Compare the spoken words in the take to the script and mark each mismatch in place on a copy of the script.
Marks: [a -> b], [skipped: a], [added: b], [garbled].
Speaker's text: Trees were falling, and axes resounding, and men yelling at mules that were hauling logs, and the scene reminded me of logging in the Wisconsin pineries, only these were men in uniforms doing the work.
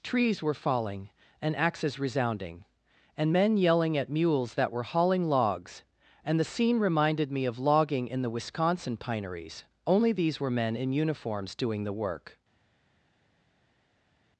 Trees were falling, and axes resounding, and men yelling at mules that were hauling logs, and the scene reminded me of logging in the Wisconsin pineries, only these were men in uniforms doing the work.